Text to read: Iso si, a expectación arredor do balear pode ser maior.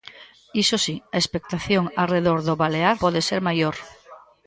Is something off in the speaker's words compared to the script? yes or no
no